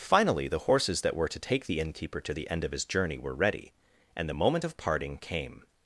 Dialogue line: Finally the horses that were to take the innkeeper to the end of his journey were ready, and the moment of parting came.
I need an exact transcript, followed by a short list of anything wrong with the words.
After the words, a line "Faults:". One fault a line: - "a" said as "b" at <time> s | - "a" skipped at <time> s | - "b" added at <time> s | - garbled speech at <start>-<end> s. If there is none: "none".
Finally the horses that were to take the innkeeper to the end of his journey were ready, and the moment of parting came.
Faults:
none